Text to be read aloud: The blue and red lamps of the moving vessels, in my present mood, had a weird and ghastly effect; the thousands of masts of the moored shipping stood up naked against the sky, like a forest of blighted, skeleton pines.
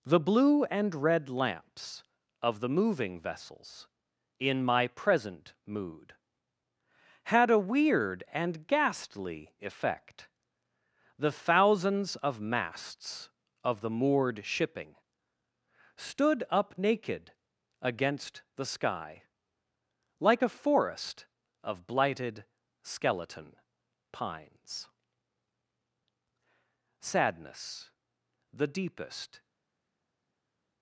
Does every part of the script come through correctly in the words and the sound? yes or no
no